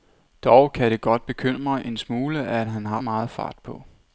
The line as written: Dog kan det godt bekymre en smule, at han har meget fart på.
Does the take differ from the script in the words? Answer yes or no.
no